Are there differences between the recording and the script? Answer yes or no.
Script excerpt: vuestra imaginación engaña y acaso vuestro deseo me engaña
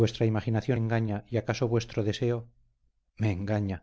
no